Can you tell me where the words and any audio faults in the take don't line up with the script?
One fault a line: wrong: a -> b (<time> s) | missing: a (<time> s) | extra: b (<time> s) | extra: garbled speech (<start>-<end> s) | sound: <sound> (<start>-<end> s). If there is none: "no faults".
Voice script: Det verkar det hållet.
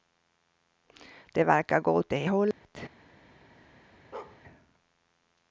extra: gå åt (1.8 s)
sound: dropout (2.5-2.6 s)
sound: bark (4.1-4.4 s)